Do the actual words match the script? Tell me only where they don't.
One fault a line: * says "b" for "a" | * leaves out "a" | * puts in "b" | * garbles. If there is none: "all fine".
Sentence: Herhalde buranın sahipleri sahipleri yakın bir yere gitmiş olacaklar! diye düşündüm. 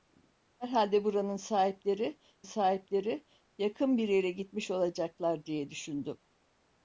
all fine